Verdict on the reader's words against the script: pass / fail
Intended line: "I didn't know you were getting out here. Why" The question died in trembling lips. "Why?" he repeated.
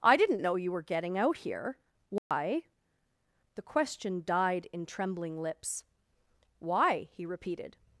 pass